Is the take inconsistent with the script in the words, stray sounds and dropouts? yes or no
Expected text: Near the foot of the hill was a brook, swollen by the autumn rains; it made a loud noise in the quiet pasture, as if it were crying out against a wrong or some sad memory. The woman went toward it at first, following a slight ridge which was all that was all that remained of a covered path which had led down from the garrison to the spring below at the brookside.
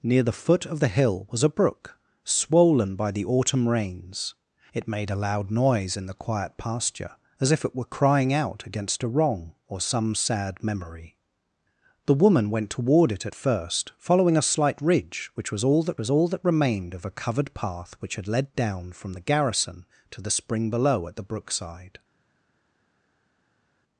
no